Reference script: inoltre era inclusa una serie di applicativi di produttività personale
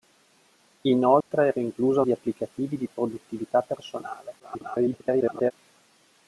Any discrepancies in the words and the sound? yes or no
yes